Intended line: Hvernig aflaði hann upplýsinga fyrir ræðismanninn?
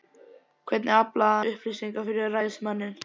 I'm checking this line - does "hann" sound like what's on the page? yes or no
no